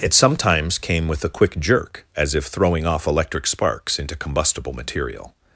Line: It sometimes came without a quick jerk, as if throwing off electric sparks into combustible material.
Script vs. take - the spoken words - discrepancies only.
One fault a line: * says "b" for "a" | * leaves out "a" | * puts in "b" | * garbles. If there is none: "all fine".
* says "with" for "without"